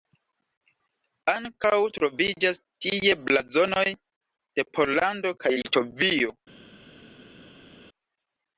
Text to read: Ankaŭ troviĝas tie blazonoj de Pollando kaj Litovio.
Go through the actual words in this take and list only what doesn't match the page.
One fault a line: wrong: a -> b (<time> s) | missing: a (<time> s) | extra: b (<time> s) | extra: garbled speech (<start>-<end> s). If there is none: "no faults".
no faults